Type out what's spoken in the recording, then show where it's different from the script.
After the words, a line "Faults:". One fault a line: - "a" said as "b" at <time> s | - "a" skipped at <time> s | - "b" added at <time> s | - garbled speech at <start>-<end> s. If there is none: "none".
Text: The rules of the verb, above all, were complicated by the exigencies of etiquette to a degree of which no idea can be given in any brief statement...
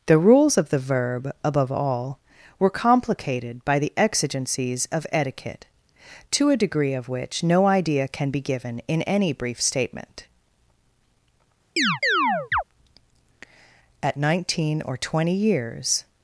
The rules of the verb, above all, were complicated by the exigencies of etiquette to a degree of which no idea can be given in any brief statement... At nineteen or twenty years
Faults:
- "At nineteen or twenty years" added at 14.0 s